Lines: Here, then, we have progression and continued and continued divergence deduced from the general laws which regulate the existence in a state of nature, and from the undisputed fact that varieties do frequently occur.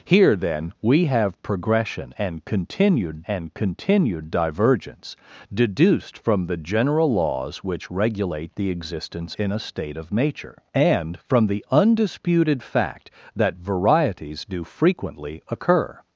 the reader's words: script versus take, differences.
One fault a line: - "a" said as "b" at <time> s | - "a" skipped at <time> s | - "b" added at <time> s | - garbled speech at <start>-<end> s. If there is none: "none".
none